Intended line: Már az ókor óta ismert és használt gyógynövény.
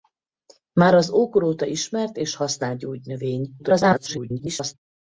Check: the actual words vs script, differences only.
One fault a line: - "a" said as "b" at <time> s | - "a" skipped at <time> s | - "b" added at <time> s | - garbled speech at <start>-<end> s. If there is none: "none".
- garbled speech at 3.6-4.7 s